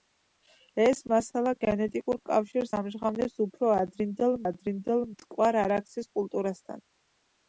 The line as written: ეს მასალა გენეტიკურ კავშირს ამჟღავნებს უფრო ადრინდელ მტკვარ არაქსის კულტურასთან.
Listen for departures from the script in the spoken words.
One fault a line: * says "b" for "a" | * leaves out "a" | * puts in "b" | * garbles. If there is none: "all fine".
* puts in "ადრინდელ"